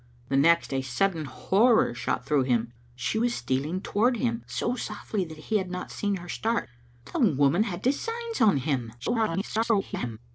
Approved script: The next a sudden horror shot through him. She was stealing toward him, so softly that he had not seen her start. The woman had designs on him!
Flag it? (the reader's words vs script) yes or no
yes